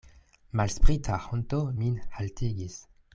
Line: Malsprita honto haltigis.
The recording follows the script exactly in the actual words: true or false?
false